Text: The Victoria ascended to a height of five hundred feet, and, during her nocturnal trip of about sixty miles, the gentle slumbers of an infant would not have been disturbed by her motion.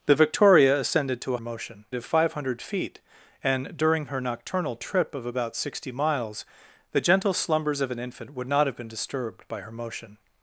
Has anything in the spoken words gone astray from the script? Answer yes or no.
yes